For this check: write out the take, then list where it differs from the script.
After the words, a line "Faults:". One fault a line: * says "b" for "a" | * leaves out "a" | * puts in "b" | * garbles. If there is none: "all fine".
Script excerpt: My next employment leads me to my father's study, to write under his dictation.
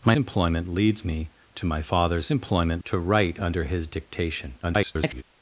My employment leads me to my father's employment, to write under his dictation. [garbled]
Faults:
* leaves out "next"
* says "employment" for "study"
* garbles